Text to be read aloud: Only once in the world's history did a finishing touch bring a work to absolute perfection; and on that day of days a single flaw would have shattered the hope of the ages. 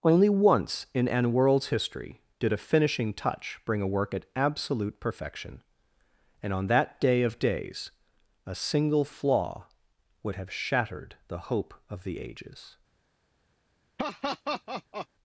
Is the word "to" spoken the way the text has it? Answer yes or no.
no